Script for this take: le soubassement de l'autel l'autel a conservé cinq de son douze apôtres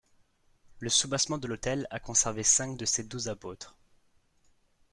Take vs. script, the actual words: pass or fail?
fail